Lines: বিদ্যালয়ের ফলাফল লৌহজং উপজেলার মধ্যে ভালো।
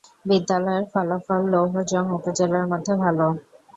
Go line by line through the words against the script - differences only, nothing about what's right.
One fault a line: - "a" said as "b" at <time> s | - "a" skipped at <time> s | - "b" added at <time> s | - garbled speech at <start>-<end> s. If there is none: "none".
none